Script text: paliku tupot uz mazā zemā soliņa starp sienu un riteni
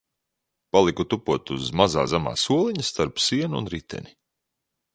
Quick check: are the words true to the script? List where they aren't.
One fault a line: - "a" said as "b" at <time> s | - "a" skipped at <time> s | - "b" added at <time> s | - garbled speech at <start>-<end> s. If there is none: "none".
none